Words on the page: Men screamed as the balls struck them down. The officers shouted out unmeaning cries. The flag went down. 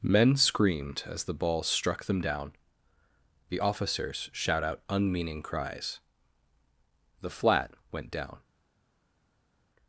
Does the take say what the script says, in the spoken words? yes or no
no